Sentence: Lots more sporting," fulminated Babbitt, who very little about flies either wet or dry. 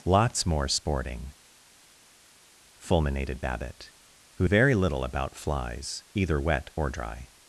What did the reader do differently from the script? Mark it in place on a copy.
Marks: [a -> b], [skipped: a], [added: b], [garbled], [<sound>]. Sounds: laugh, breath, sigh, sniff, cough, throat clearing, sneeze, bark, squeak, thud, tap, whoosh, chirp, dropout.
Lots more sporting," fulminated Babbitt, who very little about flies either wet or dry.